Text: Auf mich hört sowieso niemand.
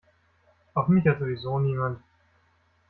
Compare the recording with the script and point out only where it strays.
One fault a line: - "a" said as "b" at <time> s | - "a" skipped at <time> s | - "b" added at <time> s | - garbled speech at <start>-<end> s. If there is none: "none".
none